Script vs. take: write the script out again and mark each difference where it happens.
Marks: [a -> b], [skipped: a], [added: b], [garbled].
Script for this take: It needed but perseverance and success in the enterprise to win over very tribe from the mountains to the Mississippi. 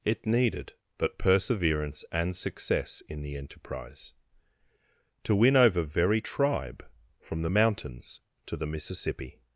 It needed but perseverance and success in the enterprise to win over very tribe from the mountains to the Mississippi.